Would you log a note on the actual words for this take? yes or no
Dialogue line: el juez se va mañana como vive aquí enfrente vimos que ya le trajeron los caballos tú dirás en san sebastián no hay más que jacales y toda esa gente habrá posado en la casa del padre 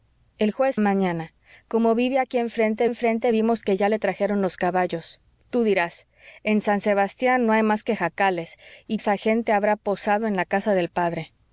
yes